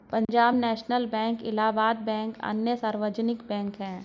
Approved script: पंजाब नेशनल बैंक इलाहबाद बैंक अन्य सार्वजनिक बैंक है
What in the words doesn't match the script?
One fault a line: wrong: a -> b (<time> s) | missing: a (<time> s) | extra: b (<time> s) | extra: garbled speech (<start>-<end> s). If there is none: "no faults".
no faults